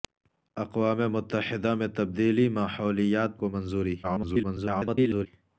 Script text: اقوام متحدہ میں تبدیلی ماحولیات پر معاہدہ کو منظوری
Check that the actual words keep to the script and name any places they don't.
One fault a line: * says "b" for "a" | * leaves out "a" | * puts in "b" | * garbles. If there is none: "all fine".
* leaves out "پر معاہدہ"
* garbles